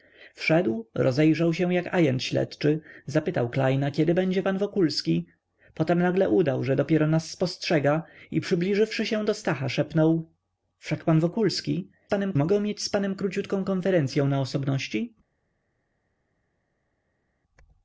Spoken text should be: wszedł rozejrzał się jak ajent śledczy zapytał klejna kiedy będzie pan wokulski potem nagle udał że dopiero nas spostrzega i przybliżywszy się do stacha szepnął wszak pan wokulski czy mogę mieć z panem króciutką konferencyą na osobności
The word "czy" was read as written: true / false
false